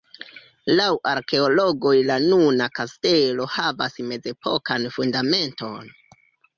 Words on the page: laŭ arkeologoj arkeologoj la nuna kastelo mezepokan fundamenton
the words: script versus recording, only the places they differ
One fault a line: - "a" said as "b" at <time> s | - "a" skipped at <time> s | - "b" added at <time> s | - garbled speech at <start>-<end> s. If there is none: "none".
- "arkeologoj" skipped at 1.9 s
- "havas" added at 3.6 s